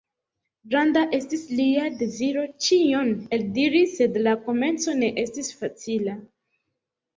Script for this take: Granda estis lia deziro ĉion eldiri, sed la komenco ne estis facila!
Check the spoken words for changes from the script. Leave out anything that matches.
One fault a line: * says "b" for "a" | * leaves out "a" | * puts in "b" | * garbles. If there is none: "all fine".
all fine